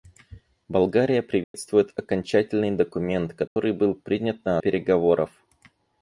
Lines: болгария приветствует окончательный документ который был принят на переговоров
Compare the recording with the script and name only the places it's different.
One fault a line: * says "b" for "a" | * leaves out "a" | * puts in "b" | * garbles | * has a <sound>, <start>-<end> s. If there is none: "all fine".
* has a dropout, 1.4-1.5 s
* has a dropout, 3.5-3.6 s